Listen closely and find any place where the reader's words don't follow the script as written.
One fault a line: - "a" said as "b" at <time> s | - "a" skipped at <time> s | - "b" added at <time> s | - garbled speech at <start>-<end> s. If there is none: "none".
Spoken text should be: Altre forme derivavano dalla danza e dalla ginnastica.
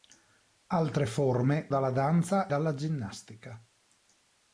- "derivavano" skipped at 1.7 s
- "e" skipped at 2.5 s